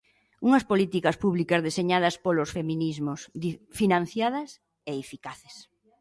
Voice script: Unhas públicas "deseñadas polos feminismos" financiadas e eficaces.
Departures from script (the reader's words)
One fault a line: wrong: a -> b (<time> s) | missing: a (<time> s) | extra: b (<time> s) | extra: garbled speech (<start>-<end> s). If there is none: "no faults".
extra: políticas (0.7 s)